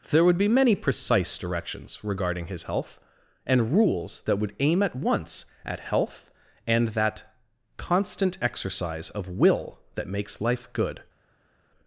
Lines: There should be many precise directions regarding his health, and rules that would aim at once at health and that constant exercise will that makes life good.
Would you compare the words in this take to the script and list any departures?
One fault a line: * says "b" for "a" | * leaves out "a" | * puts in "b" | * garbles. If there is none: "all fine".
* says "would" for "should"
* puts in "of"